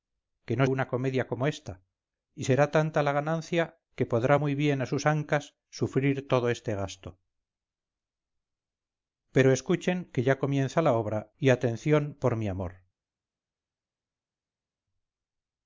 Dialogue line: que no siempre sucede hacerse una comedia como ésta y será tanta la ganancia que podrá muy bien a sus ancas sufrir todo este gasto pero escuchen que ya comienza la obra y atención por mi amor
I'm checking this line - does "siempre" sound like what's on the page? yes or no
no